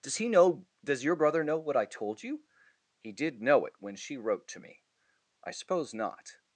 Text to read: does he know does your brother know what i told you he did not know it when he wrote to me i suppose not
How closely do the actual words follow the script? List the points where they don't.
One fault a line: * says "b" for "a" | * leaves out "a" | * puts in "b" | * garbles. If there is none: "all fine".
* leaves out "not"
* says "she" for "he"